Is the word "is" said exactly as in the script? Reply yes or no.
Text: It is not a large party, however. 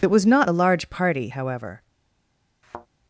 no